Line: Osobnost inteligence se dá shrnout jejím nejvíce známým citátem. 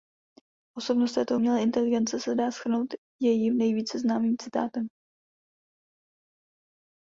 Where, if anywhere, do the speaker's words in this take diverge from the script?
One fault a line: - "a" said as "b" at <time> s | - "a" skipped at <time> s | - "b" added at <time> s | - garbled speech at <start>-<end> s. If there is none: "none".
- "této umělé" added at 1.1 s